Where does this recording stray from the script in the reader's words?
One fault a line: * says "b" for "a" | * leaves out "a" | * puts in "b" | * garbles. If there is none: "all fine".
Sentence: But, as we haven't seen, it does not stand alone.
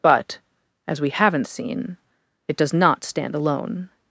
all fine